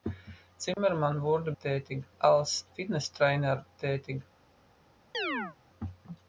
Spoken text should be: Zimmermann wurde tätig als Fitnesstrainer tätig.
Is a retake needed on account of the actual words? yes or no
no